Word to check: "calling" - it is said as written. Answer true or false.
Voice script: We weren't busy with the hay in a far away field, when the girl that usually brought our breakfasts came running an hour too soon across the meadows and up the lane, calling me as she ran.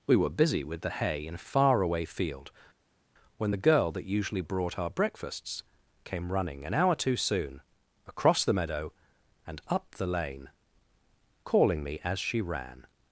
true